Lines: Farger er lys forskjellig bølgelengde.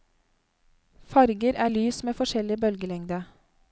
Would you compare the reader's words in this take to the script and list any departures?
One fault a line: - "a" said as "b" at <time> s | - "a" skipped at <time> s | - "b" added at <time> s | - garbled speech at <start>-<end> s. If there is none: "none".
- "med" added at 2.0 s